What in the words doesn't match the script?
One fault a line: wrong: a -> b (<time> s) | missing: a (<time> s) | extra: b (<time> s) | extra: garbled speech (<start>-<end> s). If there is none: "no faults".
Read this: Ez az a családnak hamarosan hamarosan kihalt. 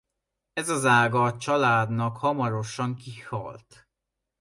extra: ága (0.8 s)
missing: hamarosan (3.0 s)